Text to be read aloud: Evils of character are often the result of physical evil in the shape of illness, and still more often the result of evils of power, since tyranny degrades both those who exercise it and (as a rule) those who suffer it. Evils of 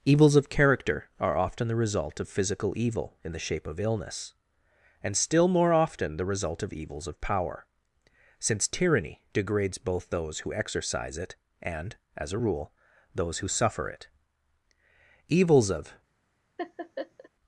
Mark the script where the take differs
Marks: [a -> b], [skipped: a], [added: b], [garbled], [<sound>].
Evils of character are often the result of physical evil in the shape of illness, and still more often the result of evils of power, since tyranny degrades both those who exercise it and (as a rule) those who suffer it. Evils of [laugh]